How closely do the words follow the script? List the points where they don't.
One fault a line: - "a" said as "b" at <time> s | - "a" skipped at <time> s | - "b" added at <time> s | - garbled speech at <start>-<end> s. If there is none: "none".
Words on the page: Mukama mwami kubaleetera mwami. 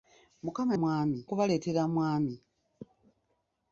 none